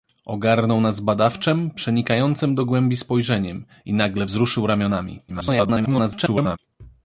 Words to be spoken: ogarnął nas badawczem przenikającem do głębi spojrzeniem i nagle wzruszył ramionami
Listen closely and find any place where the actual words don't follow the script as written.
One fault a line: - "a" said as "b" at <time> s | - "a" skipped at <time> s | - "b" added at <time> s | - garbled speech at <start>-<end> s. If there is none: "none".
- garbled speech at 5.3-6.6 s